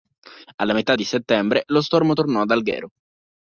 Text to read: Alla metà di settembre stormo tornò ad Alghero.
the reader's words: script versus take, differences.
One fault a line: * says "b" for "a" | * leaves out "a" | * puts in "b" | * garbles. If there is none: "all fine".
* puts in "lo"